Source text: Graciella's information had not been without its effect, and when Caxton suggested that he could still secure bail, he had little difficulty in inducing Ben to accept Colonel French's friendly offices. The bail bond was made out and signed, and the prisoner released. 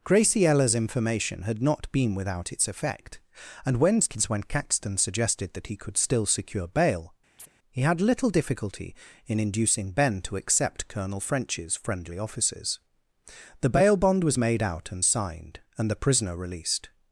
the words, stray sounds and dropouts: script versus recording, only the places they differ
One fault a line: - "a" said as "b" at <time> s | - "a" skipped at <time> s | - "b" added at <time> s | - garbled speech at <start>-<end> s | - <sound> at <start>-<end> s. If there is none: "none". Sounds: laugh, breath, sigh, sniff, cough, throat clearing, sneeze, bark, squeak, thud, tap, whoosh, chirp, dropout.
- "when" added at 4.3 s
- chirp at 7.4-7.5 s